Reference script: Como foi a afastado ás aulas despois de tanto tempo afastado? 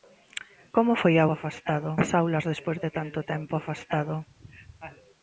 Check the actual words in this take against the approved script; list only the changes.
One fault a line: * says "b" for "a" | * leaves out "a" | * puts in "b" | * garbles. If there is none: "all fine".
all fine